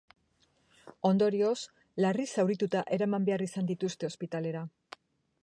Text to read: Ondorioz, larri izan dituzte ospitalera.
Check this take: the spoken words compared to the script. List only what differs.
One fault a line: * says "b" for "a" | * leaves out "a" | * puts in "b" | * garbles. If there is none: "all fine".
* puts in "zaurituta eraman behar"